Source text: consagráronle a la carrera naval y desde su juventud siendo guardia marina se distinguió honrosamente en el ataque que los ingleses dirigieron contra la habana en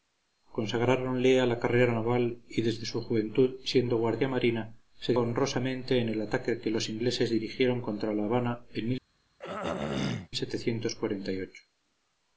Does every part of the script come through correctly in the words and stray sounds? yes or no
no